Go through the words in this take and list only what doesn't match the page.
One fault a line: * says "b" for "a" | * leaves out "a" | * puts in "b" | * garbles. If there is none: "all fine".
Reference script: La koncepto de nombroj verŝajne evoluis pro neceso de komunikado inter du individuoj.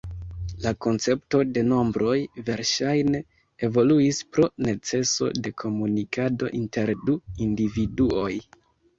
all fine